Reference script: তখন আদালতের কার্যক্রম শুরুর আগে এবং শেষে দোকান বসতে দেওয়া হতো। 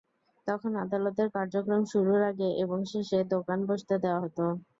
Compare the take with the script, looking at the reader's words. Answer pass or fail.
pass